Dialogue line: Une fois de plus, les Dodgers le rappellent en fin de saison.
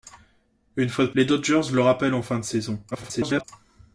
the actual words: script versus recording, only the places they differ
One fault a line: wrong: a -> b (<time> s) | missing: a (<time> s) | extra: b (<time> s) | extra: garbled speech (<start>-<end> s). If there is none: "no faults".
missing: plus (1.1 s)
extra: garbled speech (2.9-3.4 s)